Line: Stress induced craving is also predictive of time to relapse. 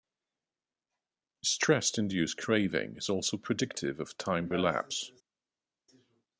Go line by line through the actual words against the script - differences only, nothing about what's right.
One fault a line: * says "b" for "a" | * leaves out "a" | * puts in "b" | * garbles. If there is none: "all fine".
* leaves out "to"